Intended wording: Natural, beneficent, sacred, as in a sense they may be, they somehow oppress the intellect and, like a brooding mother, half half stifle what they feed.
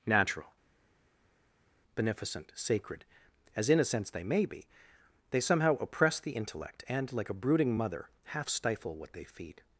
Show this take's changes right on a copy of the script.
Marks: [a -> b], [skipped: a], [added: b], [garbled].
Natural, beneficent, sacred, as in a sense they may be, they somehow oppress the intellect and, like a brooding mother, half [skipped: half] stifle what they feed.